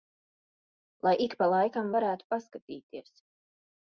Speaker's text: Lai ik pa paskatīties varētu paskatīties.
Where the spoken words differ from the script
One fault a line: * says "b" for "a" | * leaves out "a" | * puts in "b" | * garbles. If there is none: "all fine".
* says "laikam" for "paskatīties"